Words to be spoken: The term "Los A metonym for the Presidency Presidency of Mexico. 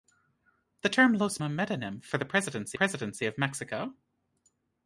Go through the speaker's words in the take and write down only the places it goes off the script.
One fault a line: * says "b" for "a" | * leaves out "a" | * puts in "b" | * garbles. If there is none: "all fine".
all fine